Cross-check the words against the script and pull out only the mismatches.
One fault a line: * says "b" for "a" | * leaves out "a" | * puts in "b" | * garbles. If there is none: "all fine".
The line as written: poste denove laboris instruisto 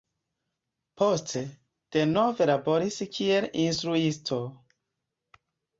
* puts in "kiel"